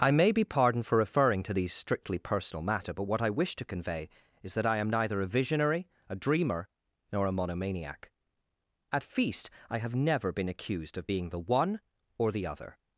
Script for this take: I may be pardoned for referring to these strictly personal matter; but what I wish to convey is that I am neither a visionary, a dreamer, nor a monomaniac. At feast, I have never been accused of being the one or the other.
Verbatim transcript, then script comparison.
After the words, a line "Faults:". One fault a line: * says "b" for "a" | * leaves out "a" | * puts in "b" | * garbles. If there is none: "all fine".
I may be pardoned for referring to these strictly personal matter; but what I wish to convey is that I am neither a visionary, a dreamer, nor a monomaniac. At feast, I have never been accused of being the one or the other.
Faults:
all fine